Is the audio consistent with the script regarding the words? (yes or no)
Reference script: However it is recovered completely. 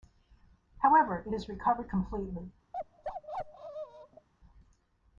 yes